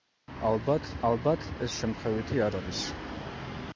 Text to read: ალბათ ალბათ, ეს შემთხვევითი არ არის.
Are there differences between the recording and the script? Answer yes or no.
no